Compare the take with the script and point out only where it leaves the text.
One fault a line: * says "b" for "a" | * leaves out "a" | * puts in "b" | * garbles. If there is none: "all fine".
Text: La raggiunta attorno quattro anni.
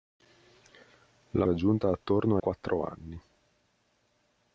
all fine